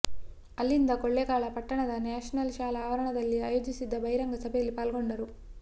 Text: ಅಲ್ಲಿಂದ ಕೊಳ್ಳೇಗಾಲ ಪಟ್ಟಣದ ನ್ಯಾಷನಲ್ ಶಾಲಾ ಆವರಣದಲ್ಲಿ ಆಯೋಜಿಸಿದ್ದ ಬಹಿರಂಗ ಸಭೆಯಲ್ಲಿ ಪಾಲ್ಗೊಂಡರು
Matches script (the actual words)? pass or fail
pass